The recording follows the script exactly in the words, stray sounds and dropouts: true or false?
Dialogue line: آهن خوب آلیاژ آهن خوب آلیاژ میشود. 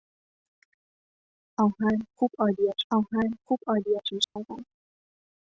false